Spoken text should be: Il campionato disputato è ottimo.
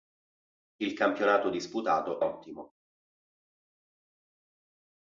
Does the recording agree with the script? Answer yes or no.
no